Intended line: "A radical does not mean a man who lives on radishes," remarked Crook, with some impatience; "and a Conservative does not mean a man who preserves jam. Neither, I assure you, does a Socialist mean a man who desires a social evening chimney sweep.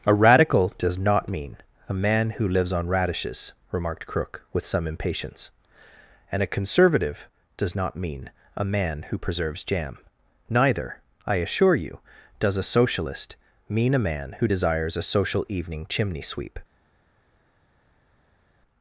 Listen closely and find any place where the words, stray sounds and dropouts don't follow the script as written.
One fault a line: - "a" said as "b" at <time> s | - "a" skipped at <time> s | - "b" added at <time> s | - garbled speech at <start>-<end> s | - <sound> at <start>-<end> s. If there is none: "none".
none